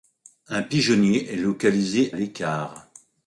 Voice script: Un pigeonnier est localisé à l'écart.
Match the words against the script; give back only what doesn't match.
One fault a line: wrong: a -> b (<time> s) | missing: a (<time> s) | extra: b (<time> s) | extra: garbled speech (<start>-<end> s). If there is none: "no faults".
missing: à (2.1 s)